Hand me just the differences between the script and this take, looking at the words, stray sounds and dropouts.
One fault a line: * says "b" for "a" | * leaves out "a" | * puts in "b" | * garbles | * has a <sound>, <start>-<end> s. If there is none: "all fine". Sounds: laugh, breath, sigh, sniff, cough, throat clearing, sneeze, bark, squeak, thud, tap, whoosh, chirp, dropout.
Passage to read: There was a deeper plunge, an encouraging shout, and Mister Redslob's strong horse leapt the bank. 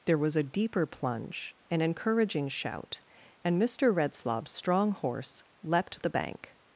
all fine